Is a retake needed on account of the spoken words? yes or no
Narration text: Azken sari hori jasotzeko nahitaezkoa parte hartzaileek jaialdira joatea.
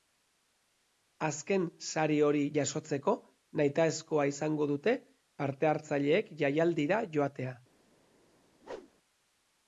yes